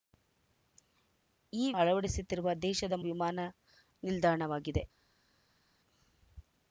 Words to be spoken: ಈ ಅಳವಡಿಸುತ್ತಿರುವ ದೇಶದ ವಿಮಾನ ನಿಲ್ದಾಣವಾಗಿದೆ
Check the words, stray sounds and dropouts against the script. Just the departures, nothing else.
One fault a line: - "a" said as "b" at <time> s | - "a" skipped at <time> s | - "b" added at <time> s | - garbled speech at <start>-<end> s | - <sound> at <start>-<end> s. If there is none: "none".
none